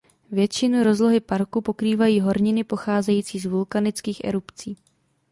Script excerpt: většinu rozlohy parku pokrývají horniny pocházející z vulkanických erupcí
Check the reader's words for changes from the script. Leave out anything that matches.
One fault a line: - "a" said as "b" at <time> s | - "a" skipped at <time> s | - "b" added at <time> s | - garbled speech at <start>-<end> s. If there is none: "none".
none